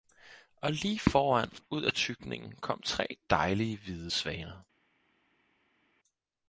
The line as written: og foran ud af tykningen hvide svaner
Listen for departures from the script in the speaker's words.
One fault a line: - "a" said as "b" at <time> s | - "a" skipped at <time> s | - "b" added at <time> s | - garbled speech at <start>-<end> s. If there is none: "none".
- "lige" added at 0.7 s
- "kom tre dejlige" added at 2.5 s